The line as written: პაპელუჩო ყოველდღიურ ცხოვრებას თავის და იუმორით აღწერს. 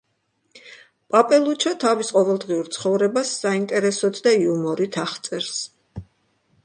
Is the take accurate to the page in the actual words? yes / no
no